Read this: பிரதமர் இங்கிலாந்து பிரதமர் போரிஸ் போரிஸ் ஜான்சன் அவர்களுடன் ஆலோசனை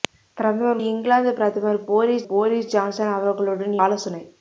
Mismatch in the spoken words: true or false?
false